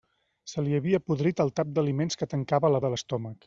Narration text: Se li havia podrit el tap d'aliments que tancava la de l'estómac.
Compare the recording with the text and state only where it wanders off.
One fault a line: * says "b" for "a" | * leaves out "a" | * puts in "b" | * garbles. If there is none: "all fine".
all fine